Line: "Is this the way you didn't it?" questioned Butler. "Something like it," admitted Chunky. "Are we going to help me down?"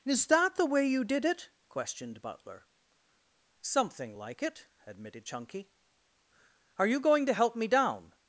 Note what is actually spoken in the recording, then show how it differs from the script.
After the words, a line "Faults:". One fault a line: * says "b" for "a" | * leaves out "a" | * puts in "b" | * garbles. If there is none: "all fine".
"Is that the way you did it?" questioned Butler. "Something like it," admitted Chunky. "Are you going to help me down?"
Faults:
* says "that" for "this"
* says "did" for "didn't"
* says "you" for "we"